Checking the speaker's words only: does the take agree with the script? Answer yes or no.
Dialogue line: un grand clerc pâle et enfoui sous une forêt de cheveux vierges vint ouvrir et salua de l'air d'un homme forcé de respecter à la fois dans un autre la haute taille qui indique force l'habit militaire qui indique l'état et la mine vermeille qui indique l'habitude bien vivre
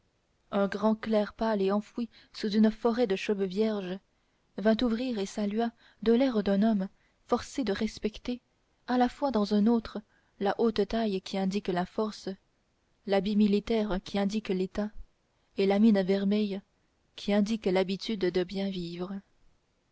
no